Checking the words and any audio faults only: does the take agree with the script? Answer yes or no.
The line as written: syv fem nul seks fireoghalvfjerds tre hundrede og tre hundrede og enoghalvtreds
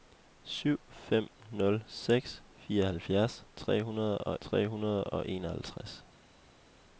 yes